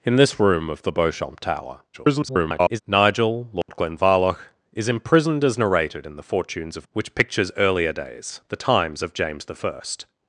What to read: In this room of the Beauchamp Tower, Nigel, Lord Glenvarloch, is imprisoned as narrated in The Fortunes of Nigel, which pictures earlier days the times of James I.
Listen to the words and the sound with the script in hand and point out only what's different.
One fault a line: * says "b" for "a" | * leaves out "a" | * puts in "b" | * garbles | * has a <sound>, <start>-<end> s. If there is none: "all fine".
* garbles
* has a dropout, 3.6-3.7 s
* leaves out "Nigel"